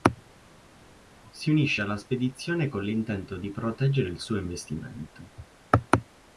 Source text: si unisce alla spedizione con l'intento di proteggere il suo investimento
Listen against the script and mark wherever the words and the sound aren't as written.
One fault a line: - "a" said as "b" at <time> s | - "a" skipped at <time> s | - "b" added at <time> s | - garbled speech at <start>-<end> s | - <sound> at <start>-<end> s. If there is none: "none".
none